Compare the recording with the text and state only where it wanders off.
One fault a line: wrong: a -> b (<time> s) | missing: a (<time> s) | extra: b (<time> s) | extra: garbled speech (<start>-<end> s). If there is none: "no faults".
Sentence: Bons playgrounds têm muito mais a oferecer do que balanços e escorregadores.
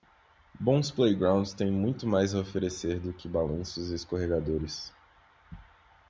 no faults